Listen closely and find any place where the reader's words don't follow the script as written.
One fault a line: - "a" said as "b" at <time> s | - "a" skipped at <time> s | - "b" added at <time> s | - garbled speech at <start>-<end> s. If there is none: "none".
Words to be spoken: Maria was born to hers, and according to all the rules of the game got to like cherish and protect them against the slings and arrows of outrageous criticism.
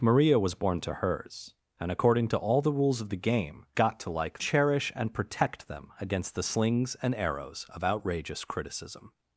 none